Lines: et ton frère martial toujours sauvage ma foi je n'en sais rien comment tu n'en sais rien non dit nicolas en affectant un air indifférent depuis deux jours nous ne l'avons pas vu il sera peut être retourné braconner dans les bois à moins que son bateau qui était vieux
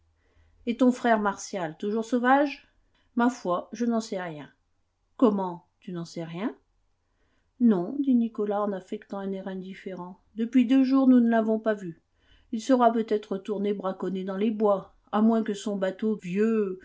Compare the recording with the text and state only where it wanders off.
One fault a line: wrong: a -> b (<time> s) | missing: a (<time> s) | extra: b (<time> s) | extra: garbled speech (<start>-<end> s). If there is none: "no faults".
missing: qui était (16.2 s)